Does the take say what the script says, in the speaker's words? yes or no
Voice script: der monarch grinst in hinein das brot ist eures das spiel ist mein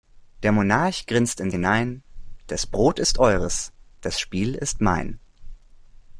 yes